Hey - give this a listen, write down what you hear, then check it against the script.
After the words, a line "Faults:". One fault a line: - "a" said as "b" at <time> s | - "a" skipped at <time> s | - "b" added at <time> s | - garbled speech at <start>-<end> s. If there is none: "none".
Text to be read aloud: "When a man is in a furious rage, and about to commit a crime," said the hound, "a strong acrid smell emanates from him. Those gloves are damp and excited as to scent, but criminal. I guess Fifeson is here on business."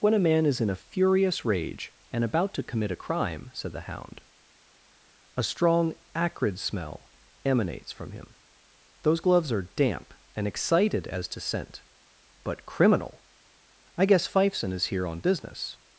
"When a man is in a furious rage, and about to commit a crime," said the hound, "a strong acrid smell emanates from him. Those gloves are damp and excited as to scent, but criminal. I guess Fifeson is here on business."
Faults:
none